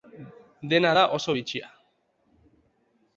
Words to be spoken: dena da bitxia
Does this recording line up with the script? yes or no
no